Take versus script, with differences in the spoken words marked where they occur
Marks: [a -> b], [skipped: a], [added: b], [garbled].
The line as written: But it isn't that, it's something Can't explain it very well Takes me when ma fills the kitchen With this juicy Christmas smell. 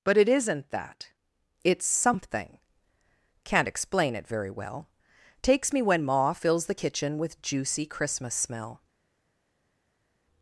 But it isn't that, it's something Can't explain it very well Takes me when ma fills the kitchen With [skipped: this] juicy Christmas smell.